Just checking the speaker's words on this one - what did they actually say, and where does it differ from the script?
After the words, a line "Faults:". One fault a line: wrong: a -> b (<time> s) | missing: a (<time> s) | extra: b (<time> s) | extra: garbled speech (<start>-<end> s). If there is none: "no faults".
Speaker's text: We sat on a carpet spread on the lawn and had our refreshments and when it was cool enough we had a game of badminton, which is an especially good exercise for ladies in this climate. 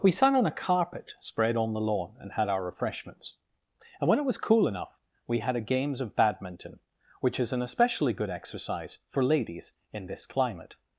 We sat on a carpet spread on the lawn and had our refreshments and when it was cool enough we had a games of badminton, which is an especially good exercise for ladies in this climate.
Faults:
wrong: game -> games (5.6 s)